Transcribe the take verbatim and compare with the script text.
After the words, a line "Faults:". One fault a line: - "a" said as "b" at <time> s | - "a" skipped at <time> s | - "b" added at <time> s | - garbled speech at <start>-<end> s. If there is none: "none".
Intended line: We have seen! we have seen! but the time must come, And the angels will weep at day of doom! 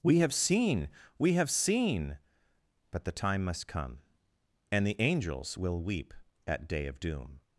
We have seen! we have seen! but the time must come, And the angels will weep at day of doom!
Faults:
none